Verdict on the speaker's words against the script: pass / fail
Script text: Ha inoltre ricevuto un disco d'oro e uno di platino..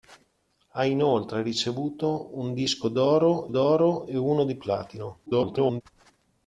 fail